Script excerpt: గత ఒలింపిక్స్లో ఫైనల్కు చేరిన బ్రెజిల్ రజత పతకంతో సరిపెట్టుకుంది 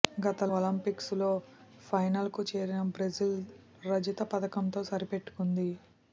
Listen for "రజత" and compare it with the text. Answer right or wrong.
right